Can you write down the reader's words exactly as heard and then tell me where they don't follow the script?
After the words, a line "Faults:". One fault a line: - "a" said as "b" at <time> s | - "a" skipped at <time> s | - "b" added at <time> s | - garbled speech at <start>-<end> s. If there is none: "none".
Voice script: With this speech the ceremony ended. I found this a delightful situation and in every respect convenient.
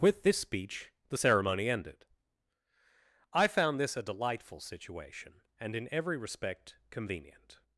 With this speech the ceremony ended. I found this a delightful situation and in every respect convenient.
Faults:
none